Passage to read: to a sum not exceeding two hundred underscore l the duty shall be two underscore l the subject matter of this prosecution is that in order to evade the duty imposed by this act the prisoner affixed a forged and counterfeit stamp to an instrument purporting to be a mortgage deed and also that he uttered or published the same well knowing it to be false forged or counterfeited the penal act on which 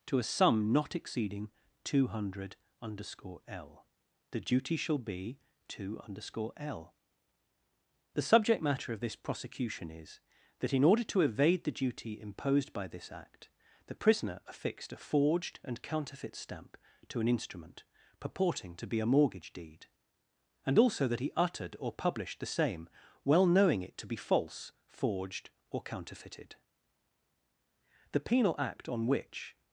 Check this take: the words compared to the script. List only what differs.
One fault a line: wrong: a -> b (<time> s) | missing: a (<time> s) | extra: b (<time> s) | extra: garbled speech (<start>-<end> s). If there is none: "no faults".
no faults